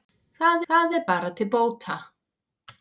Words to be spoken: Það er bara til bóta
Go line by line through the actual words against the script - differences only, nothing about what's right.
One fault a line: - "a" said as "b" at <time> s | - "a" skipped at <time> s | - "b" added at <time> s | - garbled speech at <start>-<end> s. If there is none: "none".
- "það" added at 0.7 s